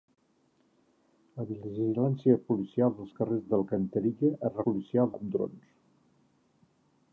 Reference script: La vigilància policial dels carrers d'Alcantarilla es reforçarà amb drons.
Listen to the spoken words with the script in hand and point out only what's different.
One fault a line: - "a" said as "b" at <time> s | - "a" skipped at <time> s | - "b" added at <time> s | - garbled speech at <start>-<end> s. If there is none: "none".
- "reforçarà" said as "policial" at 4.7 s